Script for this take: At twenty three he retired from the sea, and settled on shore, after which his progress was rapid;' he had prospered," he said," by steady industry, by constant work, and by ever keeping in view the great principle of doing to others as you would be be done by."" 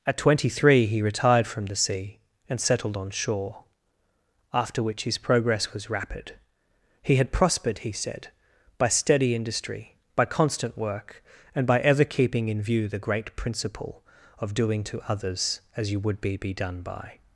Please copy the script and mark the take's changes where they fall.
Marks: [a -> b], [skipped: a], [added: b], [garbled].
At twenty three he retired from the sea, and settled on shore, after which his progress was rapid;' he had prospered," he said," by steady industry, by constant work, and by ever keeping in view the great principle of doing to others as you would be be done by.""